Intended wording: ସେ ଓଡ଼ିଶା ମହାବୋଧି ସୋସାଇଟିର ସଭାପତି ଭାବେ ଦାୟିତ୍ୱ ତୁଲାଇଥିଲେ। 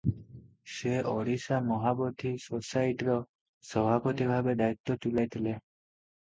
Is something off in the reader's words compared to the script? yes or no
no